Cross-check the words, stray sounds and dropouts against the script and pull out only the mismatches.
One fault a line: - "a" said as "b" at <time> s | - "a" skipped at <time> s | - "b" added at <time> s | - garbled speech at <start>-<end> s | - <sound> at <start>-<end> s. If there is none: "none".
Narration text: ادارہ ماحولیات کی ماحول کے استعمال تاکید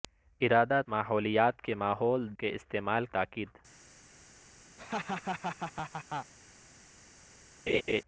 - laugh at 4.8-6.3 s
- laugh at 7.7-8.0 s